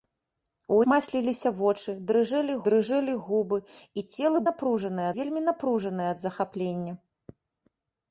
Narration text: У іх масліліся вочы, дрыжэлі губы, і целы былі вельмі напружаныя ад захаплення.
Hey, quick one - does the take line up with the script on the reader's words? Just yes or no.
no